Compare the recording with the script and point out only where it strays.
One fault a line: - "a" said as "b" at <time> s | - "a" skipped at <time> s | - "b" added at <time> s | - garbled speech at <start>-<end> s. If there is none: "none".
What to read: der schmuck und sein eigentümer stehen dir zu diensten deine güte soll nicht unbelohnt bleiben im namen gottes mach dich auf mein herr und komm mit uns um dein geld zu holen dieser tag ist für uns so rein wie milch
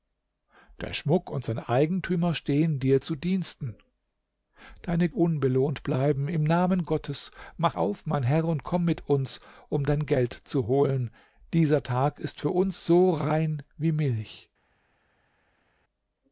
- "güte soll nicht" skipped at 5.1 s
- "dich" skipped at 7.7 s